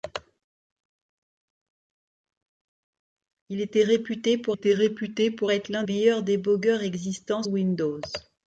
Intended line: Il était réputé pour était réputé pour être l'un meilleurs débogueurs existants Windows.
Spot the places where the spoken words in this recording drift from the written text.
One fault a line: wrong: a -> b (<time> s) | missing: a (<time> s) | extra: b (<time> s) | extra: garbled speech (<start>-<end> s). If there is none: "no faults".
no faults